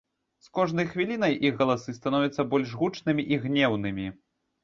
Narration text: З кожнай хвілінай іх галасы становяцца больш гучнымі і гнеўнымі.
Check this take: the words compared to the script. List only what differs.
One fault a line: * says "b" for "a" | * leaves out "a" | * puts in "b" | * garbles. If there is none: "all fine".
all fine